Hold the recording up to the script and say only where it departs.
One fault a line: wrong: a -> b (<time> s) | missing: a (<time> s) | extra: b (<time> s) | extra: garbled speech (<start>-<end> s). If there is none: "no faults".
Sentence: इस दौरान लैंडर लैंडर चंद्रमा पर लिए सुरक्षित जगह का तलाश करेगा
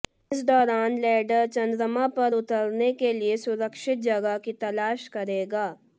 missing: लैंडर (1.4 s)
extra: उतरने के (2.3 s)
wrong: का -> की (4.4 s)